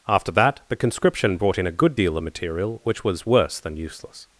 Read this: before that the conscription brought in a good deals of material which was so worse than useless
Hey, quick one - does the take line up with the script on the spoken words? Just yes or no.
no